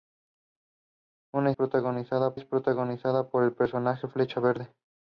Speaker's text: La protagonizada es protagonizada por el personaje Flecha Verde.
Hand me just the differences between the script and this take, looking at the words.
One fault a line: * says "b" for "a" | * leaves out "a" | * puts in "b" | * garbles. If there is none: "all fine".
all fine